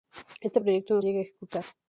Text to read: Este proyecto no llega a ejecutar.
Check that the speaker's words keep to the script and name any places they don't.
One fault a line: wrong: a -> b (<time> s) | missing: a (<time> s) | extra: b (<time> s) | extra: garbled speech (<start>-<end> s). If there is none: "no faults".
no faults